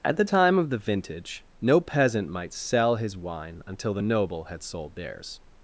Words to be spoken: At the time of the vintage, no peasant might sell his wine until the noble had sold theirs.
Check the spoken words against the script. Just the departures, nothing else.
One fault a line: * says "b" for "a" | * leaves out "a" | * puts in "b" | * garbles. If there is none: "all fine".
all fine